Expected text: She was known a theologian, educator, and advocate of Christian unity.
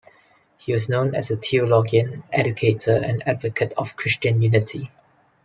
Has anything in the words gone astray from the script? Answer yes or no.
yes